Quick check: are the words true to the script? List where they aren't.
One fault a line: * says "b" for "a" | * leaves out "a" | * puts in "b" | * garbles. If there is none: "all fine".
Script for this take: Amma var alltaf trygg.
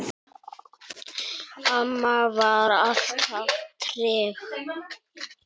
all fine